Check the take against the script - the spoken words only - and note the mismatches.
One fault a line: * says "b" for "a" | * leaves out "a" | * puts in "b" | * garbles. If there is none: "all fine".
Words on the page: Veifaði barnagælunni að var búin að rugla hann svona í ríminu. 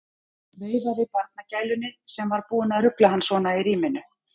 * says "sem" for "að"